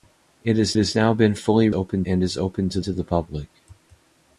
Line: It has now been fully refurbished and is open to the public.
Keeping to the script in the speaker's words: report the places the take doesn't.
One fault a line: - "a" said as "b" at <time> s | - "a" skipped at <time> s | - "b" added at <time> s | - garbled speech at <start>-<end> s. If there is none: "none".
- "has" added at 0.8 s
- "refurbished" said as "open" at 1.7 s
- "to" added at 2.8 s